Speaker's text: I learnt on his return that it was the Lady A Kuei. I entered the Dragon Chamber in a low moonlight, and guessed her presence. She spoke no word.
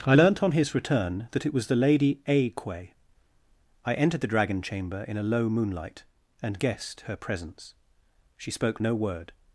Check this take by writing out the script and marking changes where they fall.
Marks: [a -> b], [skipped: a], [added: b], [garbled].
I learnt on his return that it was the Lady A Kuei. I entered the Dragon Chamber in a low moonlight, and guessed her presence. She spoke no word.